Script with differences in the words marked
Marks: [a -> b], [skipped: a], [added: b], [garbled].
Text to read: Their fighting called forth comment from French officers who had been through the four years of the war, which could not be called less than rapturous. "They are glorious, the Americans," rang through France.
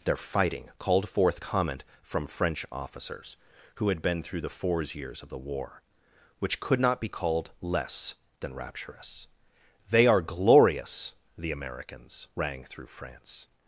Their fighting called forth comment from French officers who had been through the [four -> fours] years of the war, which could not be called less than rapturous. "They are glorious, the Americans," rang through France.